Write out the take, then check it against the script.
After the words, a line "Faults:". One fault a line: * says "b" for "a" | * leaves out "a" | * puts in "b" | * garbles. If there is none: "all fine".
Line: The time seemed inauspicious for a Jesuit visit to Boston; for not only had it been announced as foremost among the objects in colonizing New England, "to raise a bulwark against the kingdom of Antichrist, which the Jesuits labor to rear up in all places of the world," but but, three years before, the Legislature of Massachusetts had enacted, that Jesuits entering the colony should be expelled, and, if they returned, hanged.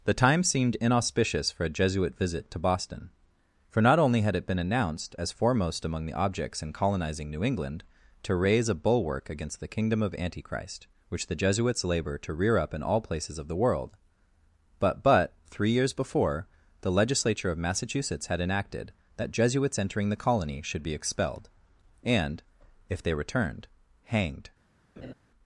The time seemed inauspicious for a Jesuit visit to Boston; for not only had it been announced as foremost among the objects in colonizing New England, "to raise a bulwark against the kingdom of Antichrist, which the Jesuits labor to rear up in all places of the world," but but, three years before, the Legislature of Massachusetts had enacted, that Jesuits entering the colony should be expelled, and, if they returned, hanged.
Faults:
all fine